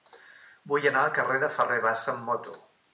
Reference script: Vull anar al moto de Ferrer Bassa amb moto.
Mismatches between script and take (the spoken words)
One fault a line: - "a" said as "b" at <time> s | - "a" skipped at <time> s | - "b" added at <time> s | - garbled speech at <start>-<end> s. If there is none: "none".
- "moto" said as "carrer" at 1.2 s